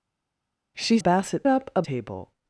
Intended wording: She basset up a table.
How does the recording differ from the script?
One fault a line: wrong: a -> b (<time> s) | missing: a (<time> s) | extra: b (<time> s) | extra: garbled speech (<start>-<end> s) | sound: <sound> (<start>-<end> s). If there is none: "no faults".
no faults